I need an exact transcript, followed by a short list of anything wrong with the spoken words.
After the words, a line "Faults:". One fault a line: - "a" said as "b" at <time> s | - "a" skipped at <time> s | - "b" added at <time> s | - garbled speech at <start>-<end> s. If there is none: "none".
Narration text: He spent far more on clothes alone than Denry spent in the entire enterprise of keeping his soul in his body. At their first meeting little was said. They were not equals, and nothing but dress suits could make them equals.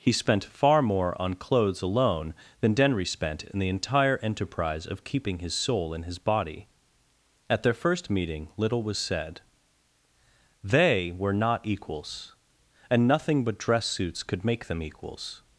He spent far more on clothes alone than Denry spent in the entire enterprise of keeping his soul in his body. At their first meeting little was said. They were not equals, and nothing but dress suits could make them equals.
Faults:
none